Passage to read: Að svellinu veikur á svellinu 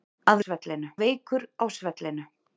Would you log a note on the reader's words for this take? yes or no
no